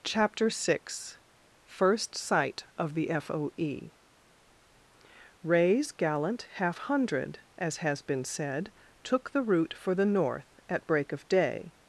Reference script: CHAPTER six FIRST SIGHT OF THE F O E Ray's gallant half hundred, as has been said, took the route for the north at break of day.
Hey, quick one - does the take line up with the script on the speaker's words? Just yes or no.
yes